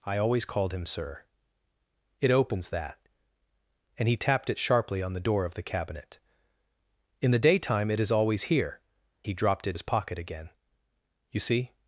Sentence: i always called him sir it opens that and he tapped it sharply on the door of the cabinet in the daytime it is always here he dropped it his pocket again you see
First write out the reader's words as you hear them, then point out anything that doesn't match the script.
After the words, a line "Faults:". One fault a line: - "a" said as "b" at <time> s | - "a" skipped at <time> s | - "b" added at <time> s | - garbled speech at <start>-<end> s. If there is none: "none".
i always called him sir it opens that and he tapped it sharply on the door of the cabinet in the daytime it is always here he dropped it his pocket again you see
Faults:
none